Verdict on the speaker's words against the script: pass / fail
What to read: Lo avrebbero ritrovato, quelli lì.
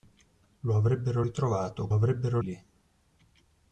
fail